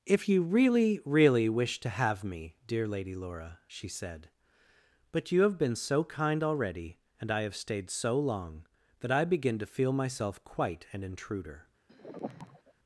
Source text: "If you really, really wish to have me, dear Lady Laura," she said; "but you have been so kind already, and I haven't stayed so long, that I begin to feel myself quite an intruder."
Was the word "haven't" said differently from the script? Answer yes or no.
yes